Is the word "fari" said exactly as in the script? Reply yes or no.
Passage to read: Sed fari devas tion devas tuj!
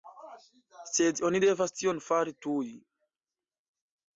no